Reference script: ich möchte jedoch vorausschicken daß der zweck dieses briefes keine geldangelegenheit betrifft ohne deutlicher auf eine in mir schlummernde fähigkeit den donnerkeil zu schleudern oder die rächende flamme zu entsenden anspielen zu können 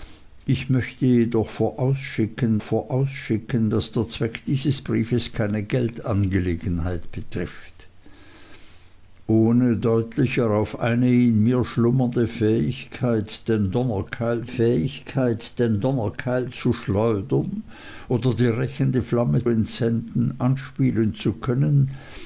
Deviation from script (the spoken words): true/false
true